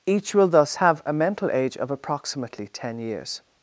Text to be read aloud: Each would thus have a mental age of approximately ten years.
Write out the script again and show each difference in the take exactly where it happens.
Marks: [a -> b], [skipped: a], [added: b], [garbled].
Each [would -> will] thus have a mental age of approximately ten years.